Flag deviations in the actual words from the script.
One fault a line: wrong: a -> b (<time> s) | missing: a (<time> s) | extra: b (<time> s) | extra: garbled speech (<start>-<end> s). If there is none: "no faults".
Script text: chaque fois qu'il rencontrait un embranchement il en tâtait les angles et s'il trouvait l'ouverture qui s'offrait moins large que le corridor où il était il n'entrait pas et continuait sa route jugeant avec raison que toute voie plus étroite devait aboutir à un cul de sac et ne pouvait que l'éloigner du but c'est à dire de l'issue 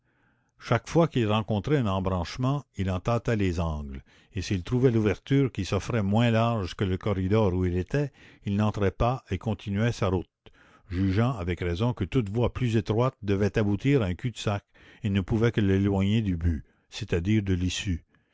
no faults